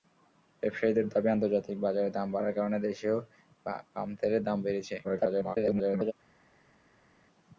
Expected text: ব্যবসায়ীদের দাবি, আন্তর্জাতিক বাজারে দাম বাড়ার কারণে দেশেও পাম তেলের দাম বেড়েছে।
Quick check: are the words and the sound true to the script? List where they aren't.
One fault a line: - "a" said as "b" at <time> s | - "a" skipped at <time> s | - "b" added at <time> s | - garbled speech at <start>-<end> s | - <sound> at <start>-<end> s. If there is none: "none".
- garbled speech at 5.0-6.1 s